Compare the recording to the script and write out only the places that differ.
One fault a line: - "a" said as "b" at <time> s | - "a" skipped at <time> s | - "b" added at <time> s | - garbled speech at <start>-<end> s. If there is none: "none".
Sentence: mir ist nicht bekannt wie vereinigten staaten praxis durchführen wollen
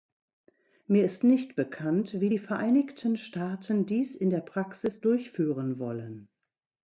- "die" added at 2.3 s
- "dies in der" added at 3.8 s